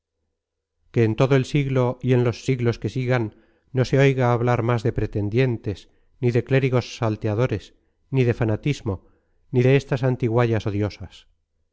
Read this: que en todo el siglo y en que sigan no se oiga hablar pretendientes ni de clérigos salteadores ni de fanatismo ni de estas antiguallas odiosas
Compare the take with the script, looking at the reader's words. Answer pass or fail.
fail